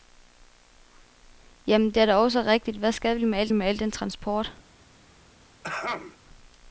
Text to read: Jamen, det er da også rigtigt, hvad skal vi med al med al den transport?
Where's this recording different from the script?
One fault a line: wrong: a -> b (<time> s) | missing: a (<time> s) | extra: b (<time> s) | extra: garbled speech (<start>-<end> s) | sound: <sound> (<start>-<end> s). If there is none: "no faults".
sound: throat clearing (5.6-6.2 s)